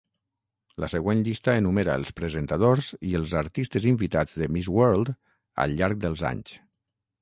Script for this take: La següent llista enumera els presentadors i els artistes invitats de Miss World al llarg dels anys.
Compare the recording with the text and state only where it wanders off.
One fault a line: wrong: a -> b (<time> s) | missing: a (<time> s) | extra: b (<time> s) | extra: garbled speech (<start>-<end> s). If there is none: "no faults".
no faults